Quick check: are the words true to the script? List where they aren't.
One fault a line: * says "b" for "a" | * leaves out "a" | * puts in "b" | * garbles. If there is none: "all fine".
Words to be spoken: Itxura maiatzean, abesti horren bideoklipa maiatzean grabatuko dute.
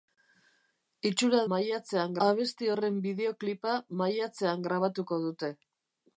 all fine